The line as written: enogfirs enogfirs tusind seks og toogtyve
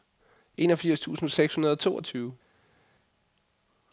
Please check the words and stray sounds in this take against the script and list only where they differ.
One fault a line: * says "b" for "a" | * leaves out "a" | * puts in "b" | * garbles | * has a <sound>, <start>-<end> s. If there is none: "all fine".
* leaves out "enogfirs"
* puts in "hundrede"